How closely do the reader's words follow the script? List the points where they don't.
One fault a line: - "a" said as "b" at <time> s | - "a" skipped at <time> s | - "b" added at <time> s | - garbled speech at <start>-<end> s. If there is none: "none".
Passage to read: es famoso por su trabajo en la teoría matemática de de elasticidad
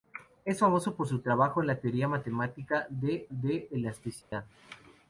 none